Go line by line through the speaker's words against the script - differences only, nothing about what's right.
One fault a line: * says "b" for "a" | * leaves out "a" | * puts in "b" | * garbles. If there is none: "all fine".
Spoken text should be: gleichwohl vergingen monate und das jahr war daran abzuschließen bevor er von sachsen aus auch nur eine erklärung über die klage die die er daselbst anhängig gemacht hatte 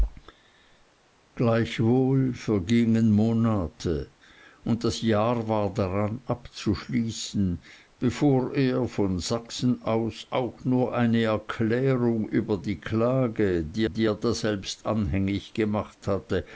all fine